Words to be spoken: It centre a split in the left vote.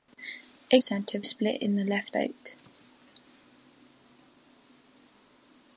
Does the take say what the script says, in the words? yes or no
yes